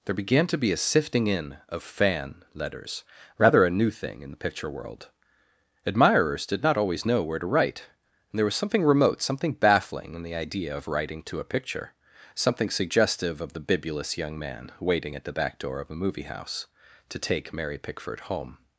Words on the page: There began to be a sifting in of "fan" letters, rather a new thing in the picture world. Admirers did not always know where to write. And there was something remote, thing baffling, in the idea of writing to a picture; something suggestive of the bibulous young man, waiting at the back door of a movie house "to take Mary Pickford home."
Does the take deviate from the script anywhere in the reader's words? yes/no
yes